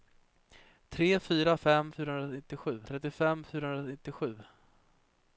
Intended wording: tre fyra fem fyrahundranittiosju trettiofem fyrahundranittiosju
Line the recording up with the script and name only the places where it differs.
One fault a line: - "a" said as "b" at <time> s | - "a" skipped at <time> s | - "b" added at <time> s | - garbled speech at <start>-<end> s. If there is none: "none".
none